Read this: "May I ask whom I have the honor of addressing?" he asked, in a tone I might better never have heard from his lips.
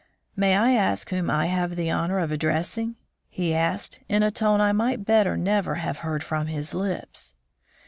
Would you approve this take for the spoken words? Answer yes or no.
yes